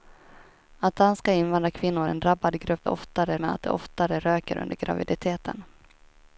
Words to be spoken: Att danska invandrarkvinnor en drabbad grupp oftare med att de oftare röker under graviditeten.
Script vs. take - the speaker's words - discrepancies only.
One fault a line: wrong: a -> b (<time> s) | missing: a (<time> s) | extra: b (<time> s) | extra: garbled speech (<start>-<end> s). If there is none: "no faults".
no faults